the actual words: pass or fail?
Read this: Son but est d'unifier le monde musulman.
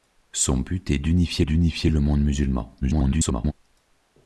fail